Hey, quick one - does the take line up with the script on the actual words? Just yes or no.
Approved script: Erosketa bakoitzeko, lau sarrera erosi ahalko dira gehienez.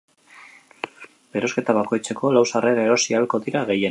yes